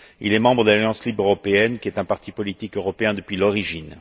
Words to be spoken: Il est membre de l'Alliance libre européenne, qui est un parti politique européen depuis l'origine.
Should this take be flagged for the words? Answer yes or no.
no